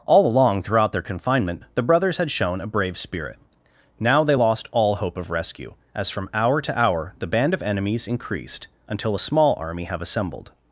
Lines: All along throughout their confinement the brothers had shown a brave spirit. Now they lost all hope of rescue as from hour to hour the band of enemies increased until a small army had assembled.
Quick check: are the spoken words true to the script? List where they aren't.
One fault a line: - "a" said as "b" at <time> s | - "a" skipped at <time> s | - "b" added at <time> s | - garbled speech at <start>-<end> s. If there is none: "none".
- "had" said as "have" at 9.9 s